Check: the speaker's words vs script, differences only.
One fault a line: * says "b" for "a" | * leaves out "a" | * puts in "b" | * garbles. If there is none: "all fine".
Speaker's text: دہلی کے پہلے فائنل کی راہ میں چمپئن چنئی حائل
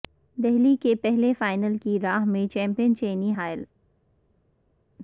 all fine